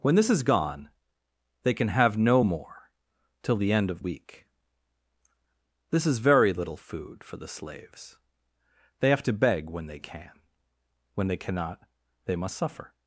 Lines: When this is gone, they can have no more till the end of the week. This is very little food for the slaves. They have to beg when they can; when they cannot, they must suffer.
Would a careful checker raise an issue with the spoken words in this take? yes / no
yes